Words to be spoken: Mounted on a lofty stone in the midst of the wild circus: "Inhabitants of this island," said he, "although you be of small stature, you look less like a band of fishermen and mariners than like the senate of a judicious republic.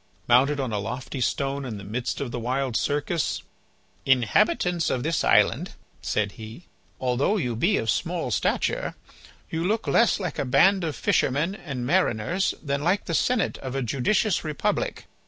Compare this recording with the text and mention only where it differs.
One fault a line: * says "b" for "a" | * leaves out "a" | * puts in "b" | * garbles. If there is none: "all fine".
all fine